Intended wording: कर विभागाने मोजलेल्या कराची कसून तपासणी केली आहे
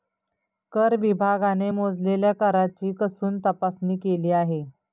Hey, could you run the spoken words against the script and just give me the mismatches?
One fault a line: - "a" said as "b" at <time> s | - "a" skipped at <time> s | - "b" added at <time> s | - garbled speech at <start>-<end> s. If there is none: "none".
none